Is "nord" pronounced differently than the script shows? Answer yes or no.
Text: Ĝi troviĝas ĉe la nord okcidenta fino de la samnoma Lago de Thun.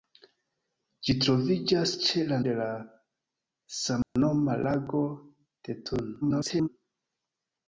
yes